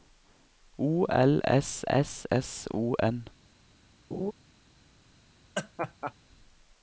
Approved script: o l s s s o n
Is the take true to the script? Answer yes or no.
yes